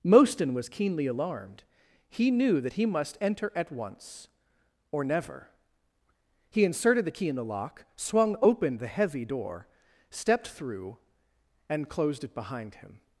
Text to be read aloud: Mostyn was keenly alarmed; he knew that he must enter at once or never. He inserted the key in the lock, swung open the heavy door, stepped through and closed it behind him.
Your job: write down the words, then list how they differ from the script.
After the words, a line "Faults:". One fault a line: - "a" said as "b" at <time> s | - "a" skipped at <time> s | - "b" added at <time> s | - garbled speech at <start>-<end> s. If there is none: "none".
Mostyn was keenly alarmed; he knew that he must enter at once or never. He inserted the key in the lock, swung open the heavy door, stepped through and closed it behind him.
Faults:
none